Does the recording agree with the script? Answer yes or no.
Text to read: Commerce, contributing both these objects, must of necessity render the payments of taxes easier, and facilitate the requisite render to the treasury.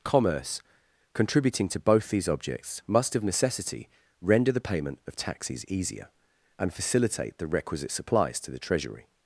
no